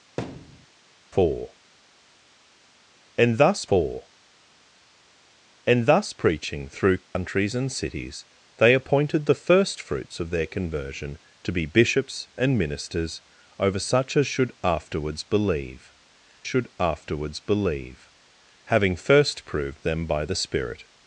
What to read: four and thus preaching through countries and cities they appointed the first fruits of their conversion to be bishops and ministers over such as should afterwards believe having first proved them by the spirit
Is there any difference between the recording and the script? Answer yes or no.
yes